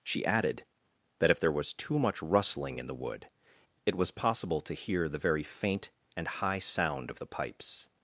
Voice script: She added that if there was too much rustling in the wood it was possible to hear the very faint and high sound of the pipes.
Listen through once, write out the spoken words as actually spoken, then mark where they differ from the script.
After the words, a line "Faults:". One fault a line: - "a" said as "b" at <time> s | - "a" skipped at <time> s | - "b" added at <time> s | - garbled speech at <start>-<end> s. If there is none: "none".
She added that if there was too much rustling in the wood it was possible to hear the very faint and high sound of the pipes.
Faults:
none